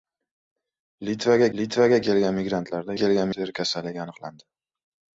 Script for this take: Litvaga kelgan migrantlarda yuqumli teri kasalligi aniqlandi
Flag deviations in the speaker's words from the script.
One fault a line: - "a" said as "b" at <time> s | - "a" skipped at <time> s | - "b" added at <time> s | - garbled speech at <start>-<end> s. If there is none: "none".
- "litvaga" added at 1.6 s
- "yuqumli" said as "kelgan" at 3.0 s